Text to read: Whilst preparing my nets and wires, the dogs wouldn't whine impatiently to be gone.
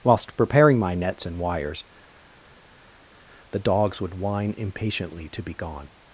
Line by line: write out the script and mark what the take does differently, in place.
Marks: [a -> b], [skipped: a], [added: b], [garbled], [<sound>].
Whilst preparing my nets and wires, the dogs [wouldn't -> would] whine impatiently to be gone.